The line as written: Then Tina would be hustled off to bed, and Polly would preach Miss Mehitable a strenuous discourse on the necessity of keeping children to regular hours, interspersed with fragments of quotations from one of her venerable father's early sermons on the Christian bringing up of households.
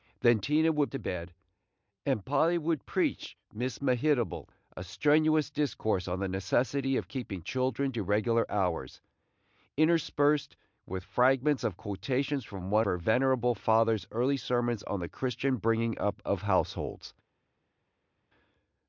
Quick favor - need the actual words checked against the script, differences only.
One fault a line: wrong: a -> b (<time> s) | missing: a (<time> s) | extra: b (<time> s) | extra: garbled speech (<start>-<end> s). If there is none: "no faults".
missing: be hustled off (0.9 s)
missing: of (12.9 s)